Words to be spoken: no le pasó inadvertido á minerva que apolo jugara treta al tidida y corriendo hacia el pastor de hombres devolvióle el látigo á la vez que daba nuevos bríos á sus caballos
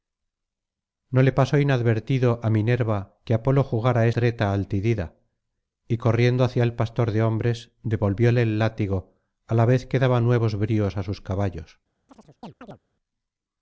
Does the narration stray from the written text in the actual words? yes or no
no